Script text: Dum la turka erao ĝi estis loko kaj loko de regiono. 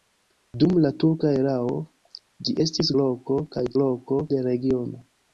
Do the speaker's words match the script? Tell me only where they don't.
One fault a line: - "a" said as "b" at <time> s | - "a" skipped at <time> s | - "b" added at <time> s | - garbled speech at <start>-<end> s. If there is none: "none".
none